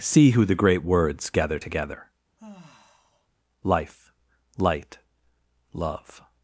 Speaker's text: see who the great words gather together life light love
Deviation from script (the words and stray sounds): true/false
true